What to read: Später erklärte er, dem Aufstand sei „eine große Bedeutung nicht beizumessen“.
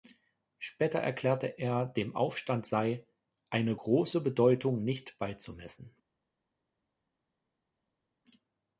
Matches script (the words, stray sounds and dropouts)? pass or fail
pass